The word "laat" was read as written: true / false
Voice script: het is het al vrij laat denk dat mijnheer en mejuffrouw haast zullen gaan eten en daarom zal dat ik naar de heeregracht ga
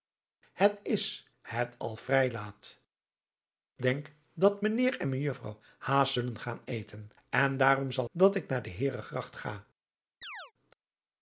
true